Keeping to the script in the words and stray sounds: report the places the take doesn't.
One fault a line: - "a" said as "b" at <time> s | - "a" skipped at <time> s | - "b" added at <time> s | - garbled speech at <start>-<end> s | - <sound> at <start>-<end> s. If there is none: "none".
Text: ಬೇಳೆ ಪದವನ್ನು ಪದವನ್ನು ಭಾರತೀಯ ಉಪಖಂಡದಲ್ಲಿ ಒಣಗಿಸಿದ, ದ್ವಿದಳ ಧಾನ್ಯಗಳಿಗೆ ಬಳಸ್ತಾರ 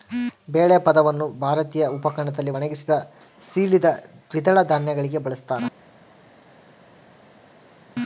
- "ಪದವನ್ನು" skipped at 1.3 s
- "ಸೀಳಿದ" added at 3.4 s